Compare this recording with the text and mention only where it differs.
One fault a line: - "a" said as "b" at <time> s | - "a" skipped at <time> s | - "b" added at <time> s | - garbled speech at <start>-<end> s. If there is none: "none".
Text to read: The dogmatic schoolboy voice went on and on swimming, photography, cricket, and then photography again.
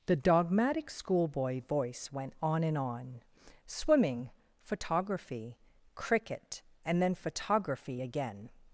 none